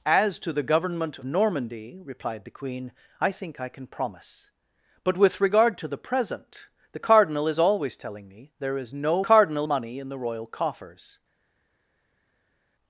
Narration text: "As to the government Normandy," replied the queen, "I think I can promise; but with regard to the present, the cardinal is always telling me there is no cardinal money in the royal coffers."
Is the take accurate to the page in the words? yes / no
yes